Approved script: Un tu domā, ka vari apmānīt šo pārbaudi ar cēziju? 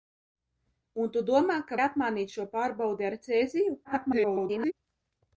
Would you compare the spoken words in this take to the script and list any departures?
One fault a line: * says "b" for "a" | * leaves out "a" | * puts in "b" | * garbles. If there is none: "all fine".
* leaves out "vari"
* garbles